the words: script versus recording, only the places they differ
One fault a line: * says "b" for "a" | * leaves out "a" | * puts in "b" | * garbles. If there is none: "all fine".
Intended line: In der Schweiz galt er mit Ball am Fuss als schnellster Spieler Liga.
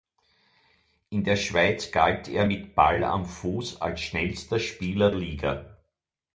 all fine